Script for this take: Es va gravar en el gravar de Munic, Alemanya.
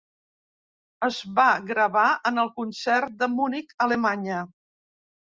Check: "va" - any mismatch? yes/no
no